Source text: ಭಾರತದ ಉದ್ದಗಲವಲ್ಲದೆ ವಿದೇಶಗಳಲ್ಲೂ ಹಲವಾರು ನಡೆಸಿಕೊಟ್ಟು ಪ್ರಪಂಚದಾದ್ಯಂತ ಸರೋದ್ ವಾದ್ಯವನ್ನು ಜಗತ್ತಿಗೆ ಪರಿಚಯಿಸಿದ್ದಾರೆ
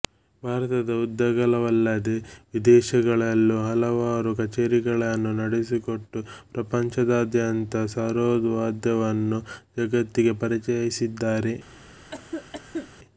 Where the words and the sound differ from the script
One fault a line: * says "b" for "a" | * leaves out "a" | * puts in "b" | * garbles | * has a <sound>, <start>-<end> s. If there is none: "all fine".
* puts in "ಕಛೇರಿಗಳನ್ನು"
* has a cough, 12.1-12.9 s